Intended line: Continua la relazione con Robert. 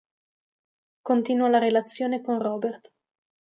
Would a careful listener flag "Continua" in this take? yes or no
no